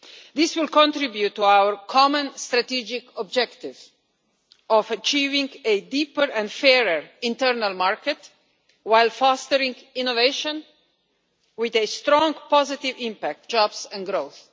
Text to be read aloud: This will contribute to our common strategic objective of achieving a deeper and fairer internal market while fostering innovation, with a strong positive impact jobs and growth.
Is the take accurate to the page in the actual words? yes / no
yes